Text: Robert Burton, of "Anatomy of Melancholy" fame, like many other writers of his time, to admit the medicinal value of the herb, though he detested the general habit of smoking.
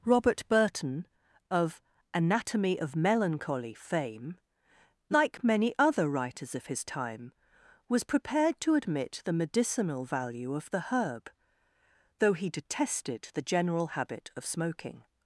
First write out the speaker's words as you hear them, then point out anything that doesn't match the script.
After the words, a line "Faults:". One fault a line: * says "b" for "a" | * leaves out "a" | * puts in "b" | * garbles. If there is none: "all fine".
Robert Burton, of "Anatomy of Melancholy" fame, like many other writers of his time, was prepared to admit the medicinal value of the herb, though he detested the general habit of smoking.
Faults:
* puts in "was prepared"